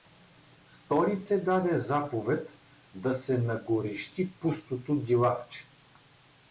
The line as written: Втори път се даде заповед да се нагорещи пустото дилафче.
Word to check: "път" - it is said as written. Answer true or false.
false